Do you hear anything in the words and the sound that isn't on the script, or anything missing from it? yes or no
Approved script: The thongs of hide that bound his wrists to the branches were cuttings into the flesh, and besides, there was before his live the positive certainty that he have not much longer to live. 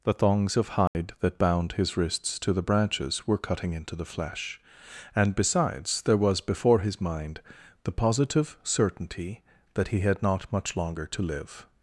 yes